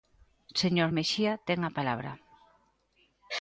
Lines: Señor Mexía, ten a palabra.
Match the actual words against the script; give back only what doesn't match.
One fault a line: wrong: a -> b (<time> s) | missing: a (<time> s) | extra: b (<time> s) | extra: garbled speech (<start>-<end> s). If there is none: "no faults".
no faults